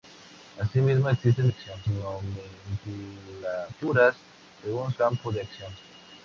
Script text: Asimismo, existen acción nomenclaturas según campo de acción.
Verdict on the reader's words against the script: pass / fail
pass